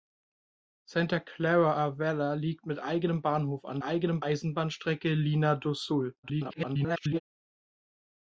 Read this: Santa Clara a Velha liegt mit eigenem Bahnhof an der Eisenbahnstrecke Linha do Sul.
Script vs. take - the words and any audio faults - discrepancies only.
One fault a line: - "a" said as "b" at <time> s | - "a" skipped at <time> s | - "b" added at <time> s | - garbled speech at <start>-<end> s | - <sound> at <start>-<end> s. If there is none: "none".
- "der" said as "eigenem" at 3.8 s
- garbled speech at 6.2-7.2 s